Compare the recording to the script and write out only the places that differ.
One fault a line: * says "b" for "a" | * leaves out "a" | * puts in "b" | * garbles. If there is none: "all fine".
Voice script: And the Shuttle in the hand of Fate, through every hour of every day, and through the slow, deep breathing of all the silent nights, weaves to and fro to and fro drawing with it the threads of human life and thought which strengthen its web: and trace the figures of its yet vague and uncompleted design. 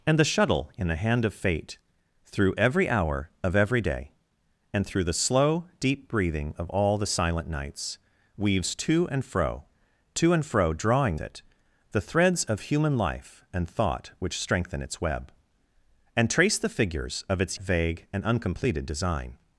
* leaves out "with"
* leaves out "yet"